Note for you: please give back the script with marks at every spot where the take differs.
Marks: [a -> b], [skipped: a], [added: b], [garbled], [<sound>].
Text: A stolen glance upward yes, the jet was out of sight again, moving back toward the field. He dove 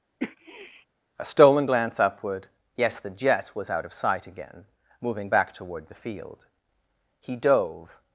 [sniff] A stolen glance upward yes, the jet was out of sight again, moving back toward the field. He dove